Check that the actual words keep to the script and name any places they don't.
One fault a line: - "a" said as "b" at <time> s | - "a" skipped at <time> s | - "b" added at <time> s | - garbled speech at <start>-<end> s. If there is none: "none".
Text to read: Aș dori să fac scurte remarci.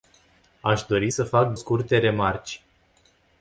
none